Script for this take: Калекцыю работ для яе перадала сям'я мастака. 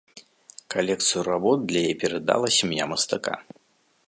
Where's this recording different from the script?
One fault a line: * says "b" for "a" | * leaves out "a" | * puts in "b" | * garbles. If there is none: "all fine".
all fine